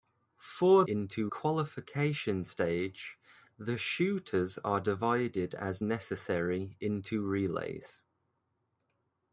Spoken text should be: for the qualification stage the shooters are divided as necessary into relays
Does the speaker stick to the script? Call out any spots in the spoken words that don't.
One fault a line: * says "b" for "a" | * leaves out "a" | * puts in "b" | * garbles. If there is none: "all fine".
* says "into" for "the"